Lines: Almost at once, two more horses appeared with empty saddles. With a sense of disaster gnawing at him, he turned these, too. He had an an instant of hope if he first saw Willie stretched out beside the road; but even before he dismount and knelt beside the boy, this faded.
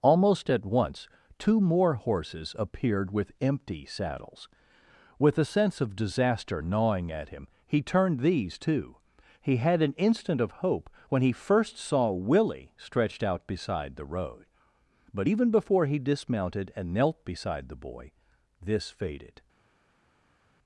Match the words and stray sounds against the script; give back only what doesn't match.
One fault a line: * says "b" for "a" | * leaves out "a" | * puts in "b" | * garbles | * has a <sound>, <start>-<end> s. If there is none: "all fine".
* leaves out "an"
* says "when" for "if"
* says "dismounted" for "dismount"